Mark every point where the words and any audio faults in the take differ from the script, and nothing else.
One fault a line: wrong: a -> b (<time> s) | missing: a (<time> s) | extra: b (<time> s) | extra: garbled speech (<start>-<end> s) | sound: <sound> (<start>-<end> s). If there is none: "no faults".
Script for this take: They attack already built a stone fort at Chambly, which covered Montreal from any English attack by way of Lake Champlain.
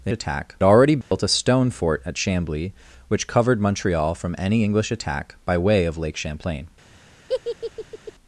sound: dropout (1.0-1.1 s)
sound: laugh (7.3-8.1 s)